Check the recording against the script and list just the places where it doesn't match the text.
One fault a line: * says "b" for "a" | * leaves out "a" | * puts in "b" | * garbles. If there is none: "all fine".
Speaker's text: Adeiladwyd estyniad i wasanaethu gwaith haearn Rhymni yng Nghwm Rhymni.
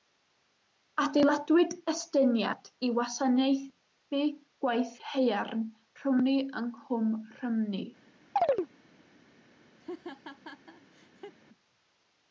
all fine